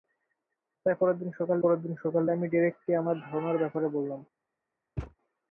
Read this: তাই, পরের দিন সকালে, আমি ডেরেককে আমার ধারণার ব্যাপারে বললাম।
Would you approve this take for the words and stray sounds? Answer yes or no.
no